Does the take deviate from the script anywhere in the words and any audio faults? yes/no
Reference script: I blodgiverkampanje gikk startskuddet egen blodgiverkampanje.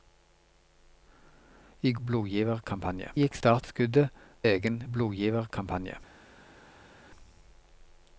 no